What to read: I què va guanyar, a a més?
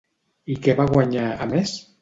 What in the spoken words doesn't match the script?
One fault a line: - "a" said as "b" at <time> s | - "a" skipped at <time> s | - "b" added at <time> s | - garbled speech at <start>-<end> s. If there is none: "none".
none